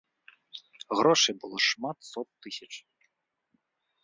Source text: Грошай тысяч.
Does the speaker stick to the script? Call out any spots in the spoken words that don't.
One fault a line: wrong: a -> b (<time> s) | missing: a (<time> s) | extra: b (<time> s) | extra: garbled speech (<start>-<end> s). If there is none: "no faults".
extra: было шмат сот (1.4 s)